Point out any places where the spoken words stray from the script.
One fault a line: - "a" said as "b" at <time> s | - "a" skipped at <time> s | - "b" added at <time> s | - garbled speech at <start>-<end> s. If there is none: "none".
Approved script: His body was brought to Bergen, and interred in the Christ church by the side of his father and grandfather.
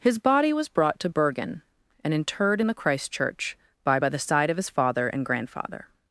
- "by" added at 4.0 s